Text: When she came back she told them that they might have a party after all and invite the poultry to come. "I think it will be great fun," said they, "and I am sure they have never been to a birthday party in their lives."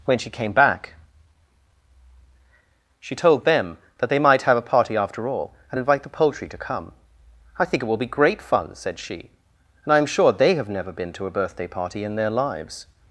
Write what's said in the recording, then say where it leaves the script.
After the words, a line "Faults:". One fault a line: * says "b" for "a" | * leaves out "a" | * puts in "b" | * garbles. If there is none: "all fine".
When she came back she told them that they might have a party after all and invite the poultry to come. "I think it will be great fun," said she, "and I am sure they have never been to a birthday party in their lives."
Faults:
* says "she" for "they"